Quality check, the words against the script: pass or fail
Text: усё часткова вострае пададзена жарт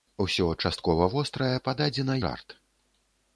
pass